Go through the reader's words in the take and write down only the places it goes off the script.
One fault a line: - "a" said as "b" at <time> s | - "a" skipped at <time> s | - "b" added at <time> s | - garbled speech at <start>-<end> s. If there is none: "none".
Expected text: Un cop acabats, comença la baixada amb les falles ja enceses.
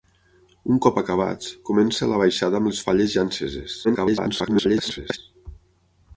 - garbled speech at 3.8-5.2 s